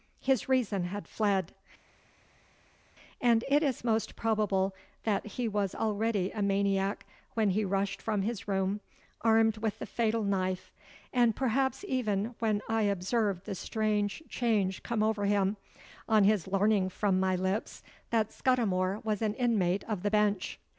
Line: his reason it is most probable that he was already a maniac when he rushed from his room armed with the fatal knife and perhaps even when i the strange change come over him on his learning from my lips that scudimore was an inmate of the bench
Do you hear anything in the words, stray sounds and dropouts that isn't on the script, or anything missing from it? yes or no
yes